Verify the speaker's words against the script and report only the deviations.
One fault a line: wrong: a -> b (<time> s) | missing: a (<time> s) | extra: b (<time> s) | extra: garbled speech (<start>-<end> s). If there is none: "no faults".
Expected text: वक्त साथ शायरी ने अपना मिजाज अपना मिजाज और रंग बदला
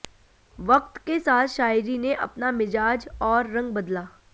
extra: के (1.0 s)
missing: अपना मिजाज (3.1 s)